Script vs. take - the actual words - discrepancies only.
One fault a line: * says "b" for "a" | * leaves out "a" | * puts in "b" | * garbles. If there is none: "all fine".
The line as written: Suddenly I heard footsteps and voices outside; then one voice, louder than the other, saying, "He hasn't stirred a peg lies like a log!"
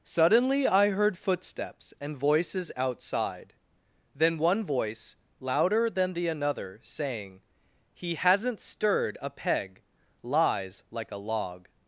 * says "another" for "other"